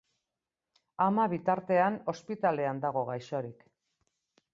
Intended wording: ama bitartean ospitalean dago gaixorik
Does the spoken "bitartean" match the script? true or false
true